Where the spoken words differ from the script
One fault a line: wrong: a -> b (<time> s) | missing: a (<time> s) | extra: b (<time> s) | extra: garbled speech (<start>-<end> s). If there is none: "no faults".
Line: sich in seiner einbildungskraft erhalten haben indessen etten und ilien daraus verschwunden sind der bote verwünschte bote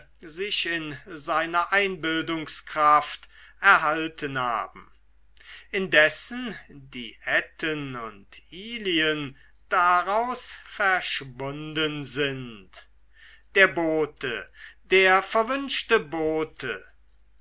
extra: die (6.7 s)
extra: der (14.8 s)